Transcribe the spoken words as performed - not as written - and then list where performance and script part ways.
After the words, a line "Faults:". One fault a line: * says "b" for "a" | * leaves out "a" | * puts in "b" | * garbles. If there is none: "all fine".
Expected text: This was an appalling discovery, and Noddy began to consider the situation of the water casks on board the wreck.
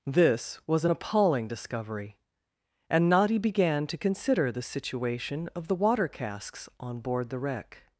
This was an appalling discovery, and Noddy began to consider the situation of the water casks on board the wreck.
Faults:
all fine